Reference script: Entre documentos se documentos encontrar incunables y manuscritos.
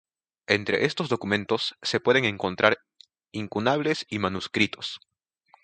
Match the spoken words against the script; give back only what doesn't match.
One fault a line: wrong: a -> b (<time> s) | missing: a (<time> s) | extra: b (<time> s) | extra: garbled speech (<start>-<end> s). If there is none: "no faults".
extra: estos (0.8 s)
wrong: documentos -> pueden (2.0 s)